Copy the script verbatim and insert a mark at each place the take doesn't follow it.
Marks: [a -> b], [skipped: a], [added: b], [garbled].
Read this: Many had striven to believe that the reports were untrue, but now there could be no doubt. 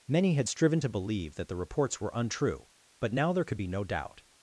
Many had striven to believe that the reports were untrue, but now there could be no doubt.